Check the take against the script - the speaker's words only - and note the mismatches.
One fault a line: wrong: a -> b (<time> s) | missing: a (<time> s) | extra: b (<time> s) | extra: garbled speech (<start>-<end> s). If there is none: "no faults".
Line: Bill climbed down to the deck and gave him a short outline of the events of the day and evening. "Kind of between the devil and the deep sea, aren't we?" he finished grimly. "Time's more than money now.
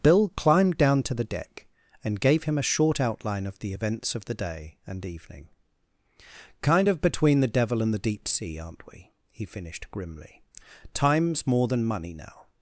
no faults